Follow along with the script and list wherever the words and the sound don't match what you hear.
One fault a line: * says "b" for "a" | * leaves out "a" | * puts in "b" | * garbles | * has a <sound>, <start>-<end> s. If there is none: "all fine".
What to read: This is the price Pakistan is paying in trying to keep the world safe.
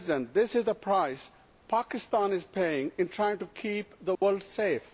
* has a dropout, 4.2-4.2 s